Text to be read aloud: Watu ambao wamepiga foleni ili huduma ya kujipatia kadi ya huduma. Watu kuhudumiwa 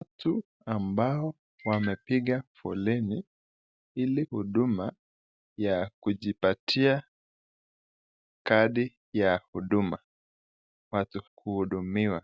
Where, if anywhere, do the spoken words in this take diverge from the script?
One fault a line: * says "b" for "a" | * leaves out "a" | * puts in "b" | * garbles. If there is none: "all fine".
all fine